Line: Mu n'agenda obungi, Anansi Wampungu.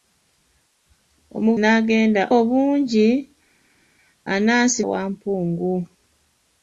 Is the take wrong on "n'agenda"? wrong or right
right